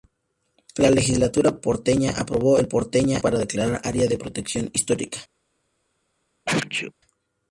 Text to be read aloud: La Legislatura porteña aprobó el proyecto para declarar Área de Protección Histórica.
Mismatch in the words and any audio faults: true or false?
true